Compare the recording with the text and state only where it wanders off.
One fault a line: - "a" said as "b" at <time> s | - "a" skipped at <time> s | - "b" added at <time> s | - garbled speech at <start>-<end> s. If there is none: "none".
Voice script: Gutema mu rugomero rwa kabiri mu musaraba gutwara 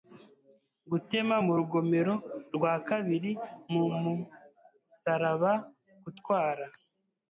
none